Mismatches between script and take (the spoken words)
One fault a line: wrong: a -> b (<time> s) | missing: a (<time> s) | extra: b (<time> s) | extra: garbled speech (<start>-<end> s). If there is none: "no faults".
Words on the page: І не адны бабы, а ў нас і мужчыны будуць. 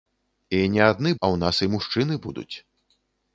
missing: бабы (1.1 s)